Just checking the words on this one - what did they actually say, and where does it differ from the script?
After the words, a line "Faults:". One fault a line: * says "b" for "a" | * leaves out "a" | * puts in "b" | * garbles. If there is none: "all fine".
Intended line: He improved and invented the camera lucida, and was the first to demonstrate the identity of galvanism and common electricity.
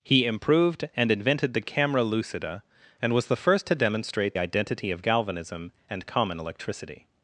He improved and invented the camera lucida, and was the first to demonstrate identity of galvanism and common electricity.
Faults:
* leaves out "the"